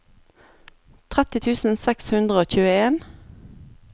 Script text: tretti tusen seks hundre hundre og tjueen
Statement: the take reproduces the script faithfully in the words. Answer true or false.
false